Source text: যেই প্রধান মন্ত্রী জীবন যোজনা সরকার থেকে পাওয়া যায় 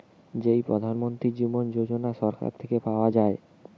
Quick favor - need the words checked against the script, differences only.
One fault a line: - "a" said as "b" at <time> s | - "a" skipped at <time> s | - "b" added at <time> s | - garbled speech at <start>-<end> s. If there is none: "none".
none